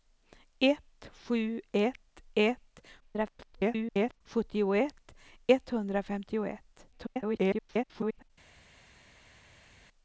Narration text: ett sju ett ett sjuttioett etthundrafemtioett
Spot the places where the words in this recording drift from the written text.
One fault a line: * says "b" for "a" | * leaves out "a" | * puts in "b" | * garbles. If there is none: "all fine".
* garbles
* garbles